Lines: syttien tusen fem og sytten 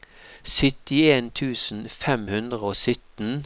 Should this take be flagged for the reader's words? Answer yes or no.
yes